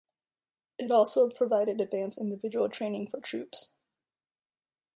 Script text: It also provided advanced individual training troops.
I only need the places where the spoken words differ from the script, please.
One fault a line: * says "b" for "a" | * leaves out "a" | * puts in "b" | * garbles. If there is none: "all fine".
* puts in "for"